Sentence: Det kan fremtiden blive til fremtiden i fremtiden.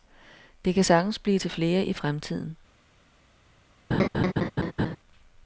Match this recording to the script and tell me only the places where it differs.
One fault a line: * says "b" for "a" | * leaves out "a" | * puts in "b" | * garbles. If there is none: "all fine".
* says "sagtens" for "fremtiden"
* says "flere" for "fremtiden"